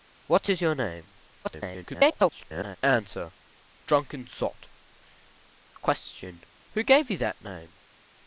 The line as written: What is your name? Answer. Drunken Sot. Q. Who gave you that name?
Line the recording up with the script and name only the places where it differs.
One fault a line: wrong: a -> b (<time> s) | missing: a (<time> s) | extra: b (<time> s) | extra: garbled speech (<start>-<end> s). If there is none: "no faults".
extra: garbled speech (1.4-2.8 s)